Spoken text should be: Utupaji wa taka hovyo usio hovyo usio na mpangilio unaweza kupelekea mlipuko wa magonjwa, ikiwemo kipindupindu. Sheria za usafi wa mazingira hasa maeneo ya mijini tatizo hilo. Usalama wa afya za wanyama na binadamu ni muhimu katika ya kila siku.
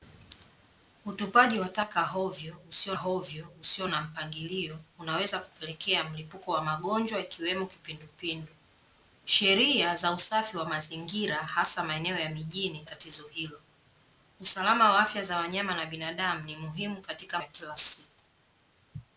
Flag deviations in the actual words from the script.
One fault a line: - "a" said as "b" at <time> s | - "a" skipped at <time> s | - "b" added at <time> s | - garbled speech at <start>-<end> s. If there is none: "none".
none